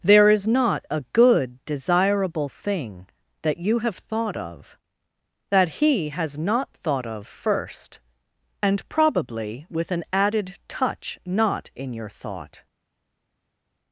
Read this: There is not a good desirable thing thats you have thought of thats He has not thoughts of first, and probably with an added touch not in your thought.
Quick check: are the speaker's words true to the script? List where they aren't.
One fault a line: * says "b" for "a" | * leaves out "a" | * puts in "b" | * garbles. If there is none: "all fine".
* says "that" for "thats"
* says "that" for "thats"
* says "thought" for "thoughts"